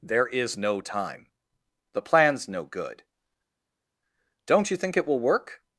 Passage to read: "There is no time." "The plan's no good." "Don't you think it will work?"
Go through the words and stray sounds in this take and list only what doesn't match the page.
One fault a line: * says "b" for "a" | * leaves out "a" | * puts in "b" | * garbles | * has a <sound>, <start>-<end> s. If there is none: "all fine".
all fine